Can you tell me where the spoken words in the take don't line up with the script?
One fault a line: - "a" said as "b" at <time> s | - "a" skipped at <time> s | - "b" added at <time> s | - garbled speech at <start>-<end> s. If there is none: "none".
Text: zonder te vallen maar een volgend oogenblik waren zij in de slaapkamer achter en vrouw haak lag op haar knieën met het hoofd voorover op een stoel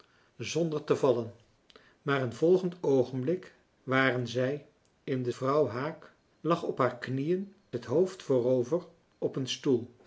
- "slaapkamer achter en" skipped at 5.3 s
- "met" skipped at 7.5 s